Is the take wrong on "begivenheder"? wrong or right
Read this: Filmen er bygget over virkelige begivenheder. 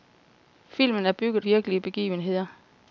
right